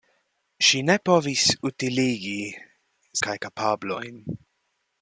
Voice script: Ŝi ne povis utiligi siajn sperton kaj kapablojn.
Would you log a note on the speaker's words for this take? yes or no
yes